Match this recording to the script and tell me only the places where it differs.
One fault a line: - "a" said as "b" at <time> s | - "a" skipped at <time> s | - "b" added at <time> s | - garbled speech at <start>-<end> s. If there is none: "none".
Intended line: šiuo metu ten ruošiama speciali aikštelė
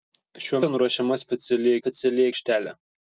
- "metu" skipped at 0.6 s
- "speciali" added at 1.8 s